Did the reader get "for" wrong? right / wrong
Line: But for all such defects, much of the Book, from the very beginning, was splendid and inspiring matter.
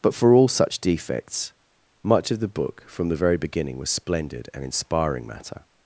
right